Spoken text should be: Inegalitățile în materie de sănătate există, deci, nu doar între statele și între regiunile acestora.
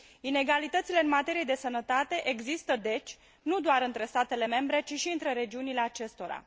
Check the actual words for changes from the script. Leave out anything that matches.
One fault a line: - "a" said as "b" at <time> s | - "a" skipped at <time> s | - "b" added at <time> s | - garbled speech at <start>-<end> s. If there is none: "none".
- "membre ci" added at 4.4 s